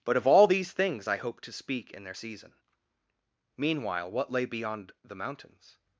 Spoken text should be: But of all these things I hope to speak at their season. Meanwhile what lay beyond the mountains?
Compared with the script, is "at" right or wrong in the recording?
wrong